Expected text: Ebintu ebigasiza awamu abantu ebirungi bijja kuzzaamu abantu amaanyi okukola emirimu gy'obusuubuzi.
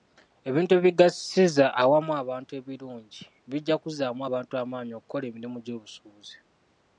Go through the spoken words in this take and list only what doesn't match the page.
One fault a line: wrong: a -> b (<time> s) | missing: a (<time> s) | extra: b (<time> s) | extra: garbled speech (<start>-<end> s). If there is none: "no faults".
no faults